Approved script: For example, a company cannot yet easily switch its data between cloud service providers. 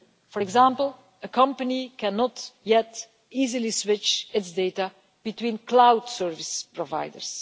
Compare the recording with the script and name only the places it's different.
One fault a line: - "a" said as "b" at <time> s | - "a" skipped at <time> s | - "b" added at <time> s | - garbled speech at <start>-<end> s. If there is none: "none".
none